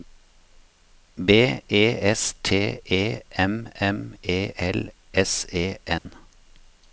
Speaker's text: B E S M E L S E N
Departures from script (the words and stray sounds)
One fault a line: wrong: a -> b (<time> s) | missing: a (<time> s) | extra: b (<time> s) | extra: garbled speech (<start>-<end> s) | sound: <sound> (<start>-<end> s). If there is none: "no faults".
extra: T E M (2.4 s)
sound: dropout (6.0-6.1 s)